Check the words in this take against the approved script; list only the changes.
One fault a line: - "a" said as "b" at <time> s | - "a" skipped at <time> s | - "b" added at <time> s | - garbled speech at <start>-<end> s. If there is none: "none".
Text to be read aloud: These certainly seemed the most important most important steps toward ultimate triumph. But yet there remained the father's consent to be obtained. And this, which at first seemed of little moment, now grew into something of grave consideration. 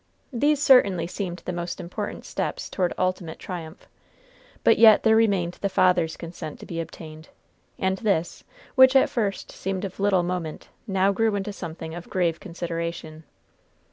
- "most important" skipped at 2.2 s